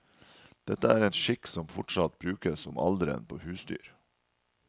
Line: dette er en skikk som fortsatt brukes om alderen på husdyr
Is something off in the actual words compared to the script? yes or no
no